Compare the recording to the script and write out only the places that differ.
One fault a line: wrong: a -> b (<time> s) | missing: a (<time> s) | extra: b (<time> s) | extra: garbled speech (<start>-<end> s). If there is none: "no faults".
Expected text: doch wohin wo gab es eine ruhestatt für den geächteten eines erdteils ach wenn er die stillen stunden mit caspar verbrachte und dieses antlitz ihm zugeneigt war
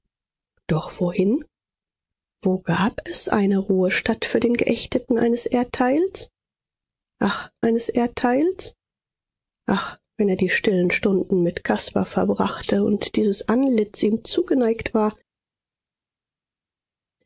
extra: eines erdteils ach (7.6 s)